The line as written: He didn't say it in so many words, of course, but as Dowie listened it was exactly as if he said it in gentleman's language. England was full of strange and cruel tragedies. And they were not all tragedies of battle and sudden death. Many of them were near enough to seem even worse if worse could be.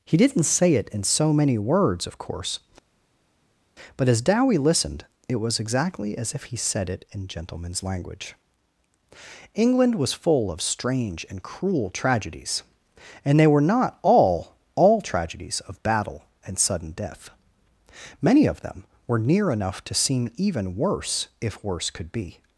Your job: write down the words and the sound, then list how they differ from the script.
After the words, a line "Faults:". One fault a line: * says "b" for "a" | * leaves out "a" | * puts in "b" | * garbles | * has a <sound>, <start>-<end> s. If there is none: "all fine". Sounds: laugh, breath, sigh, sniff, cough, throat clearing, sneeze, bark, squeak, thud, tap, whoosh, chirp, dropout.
He didn't say it in so many words, of course, but as Dowie listened it was exactly as if he said it in gentleman's language. England was full of strange and cruel tragedies. And they were not all all tragedies of battle and sudden death. Many of them were near enough to seem even worse if worse could be.
Faults:
* puts in "all"